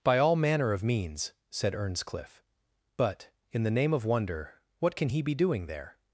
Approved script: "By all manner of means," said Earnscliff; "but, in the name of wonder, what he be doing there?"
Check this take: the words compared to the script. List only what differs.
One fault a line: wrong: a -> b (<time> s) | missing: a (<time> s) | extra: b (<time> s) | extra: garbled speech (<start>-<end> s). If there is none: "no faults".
extra: can (5.0 s)